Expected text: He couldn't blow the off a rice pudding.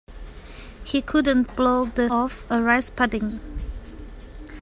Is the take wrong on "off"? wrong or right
right